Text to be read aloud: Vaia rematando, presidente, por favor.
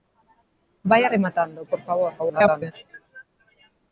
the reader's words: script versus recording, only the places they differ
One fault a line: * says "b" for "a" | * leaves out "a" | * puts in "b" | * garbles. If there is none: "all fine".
* leaves out "presidente"
* garbles